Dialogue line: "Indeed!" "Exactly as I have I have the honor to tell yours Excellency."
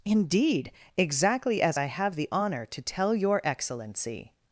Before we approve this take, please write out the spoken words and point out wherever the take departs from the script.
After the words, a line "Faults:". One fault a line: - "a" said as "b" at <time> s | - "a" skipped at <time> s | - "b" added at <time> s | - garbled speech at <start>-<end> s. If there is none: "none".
"Indeed!" "Exactly as I have the honor to tell your Excellency."
Faults:
- "I have" skipped at 2.1 s
- "yours" said as "your" at 3.2 s